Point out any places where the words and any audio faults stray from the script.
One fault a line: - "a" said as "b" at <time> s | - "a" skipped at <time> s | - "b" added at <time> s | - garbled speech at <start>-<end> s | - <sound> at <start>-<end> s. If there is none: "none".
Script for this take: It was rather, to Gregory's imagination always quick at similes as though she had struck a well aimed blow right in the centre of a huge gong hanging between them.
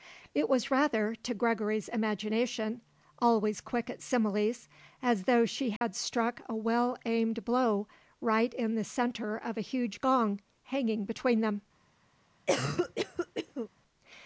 - dropout at 5.8-5.8 s
- cough at 12.5-13.7 s